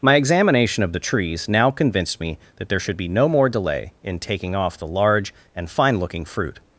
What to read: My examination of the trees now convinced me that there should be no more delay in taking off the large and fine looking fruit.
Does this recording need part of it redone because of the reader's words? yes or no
no